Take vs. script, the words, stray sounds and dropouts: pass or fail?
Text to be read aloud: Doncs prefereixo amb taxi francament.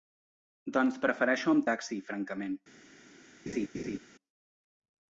fail